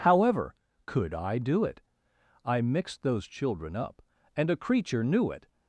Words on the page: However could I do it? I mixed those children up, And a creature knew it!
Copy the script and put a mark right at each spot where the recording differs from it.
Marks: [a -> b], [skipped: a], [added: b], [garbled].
However could I do it? I mixed those children up, And a creature knew it!